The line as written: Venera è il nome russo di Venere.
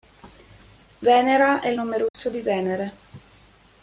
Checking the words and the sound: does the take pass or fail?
fail